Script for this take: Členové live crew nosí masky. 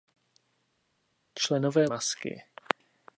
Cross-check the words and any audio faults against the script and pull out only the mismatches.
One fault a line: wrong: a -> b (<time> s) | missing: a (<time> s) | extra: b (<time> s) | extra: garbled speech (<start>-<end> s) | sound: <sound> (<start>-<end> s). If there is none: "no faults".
missing: live crew nosí (1.8 s)